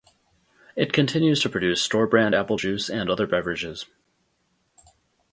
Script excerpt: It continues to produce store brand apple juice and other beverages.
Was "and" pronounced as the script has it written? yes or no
yes